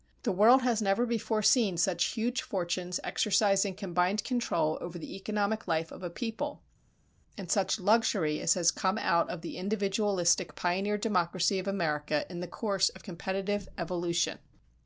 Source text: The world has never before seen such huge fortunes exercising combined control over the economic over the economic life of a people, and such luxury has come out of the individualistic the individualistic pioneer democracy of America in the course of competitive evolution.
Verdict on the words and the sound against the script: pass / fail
fail